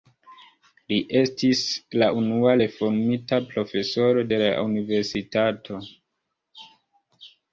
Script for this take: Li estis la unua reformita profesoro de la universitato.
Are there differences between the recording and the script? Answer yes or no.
no